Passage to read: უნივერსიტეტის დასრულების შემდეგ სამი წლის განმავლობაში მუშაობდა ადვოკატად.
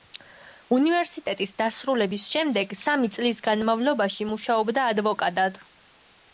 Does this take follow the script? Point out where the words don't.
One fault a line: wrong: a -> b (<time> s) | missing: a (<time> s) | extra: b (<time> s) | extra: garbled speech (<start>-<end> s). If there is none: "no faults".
no faults